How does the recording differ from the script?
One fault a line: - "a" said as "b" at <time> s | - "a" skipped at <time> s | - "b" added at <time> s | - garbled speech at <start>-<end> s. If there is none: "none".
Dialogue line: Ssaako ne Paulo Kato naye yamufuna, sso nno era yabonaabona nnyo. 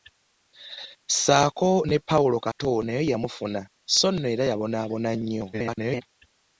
- garbled speech at 5.5-6.0 s